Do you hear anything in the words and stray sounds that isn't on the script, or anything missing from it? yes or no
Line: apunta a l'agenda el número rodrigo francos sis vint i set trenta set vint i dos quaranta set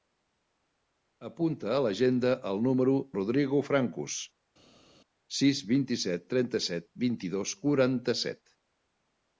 no